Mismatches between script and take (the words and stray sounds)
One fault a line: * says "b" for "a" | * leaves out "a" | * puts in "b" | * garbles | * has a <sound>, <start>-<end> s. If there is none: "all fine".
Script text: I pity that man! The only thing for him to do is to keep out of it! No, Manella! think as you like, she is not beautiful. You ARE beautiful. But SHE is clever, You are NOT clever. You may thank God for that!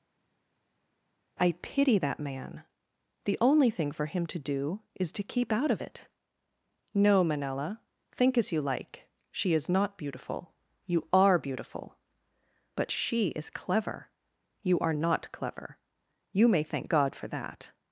all fine